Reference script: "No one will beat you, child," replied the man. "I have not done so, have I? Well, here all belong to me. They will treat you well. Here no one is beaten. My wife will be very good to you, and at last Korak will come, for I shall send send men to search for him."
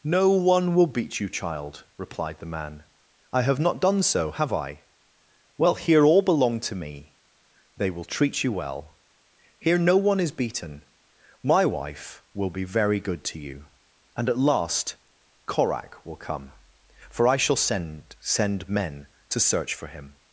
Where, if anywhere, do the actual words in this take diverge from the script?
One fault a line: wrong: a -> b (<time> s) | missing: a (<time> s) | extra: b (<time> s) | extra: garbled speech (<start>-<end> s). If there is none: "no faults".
no faults